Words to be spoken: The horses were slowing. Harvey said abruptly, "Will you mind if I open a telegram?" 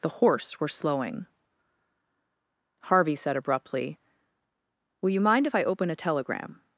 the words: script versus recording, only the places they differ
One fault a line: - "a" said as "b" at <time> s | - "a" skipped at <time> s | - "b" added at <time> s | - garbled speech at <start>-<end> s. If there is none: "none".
- "horses" said as "horse" at 0.1 s